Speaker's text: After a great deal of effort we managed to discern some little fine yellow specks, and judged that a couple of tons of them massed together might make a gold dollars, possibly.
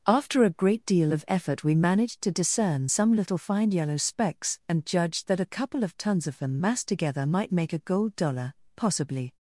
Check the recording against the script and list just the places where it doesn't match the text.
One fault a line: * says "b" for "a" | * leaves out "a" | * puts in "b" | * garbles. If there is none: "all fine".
* says "dollar" for "dollars"